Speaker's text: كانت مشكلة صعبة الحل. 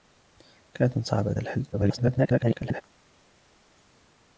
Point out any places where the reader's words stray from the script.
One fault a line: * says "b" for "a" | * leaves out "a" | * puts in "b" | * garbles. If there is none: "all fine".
* leaves out "مشكلة"
* garbles